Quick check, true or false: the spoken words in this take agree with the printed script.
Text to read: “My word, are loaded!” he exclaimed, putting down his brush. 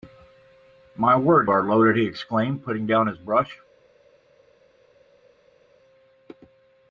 true